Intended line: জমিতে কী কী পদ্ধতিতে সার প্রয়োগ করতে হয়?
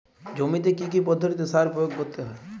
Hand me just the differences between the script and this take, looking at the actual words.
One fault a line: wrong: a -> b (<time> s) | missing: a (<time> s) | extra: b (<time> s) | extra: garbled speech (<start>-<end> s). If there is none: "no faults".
no faults